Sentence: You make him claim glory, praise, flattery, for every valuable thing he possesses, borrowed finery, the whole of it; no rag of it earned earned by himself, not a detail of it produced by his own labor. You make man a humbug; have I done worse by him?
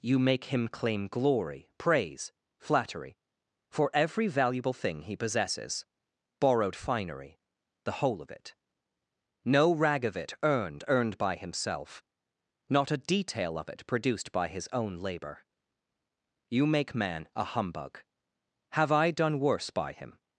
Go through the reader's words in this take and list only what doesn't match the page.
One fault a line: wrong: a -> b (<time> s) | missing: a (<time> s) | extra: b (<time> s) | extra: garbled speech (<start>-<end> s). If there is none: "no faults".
no faults